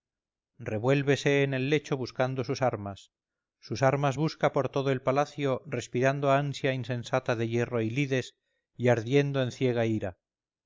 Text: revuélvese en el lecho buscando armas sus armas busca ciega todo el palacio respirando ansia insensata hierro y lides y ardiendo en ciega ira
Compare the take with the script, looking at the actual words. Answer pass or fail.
fail